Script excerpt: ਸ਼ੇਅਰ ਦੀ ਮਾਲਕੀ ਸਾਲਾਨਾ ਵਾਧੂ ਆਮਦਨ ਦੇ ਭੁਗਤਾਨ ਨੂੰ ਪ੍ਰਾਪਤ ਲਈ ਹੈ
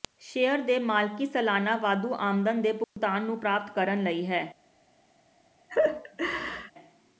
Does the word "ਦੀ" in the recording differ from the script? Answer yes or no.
yes